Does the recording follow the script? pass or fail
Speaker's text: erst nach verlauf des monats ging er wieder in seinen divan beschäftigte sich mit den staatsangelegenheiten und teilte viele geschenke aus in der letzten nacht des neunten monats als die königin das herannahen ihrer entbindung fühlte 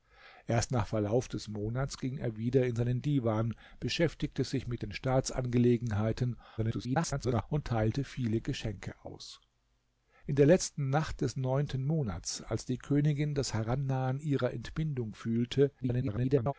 fail